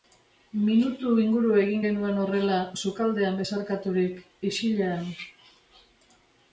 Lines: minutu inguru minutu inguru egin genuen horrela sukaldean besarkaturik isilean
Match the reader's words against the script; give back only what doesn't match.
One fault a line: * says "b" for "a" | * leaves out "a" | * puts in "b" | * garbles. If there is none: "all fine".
* leaves out "minutu inguru"